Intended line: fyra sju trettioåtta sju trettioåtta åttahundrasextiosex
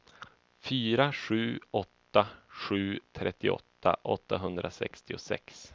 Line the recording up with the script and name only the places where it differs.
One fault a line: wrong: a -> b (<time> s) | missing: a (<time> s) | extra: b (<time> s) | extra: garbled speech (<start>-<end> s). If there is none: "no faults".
wrong: trettioåtta -> åtta (1.7 s)